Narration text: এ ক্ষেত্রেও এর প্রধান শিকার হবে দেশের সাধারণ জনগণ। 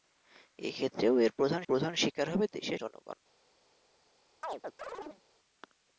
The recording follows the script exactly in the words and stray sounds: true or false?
false